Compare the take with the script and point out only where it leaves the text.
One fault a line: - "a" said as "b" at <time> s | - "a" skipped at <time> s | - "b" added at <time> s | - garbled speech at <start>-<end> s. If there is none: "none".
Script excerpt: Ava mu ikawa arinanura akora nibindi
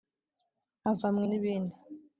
- "ikawa arinanura akora" skipped at 1.2 s